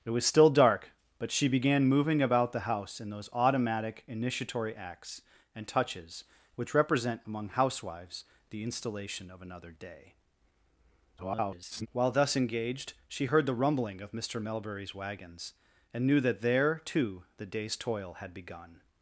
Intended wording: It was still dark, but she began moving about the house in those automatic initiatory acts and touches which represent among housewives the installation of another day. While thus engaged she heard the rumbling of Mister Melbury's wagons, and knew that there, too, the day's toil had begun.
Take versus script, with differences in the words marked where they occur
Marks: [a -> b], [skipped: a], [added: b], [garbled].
It was still dark, but she began moving about the house in those automatic initiatory acts and touches which represent among housewives the installation of another day. [garbled] While thus engaged she heard the rumbling of Mister Melbury's wagons, and knew that there, too, the day's toil had begun.